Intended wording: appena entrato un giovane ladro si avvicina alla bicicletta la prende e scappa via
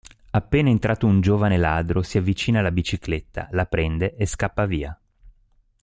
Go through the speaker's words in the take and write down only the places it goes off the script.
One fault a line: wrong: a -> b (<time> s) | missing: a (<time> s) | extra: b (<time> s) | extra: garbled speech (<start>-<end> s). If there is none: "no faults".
no faults